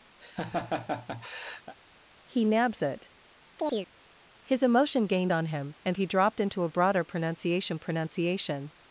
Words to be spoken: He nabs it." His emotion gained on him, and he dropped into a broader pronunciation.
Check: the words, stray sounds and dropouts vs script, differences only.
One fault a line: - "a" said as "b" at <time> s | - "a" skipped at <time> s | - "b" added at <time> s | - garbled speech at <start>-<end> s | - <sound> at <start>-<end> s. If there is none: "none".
- laugh at 0.2-1.7 s
- chirp at 3.6-3.9 s
- "pronunciation" added at 7.8 s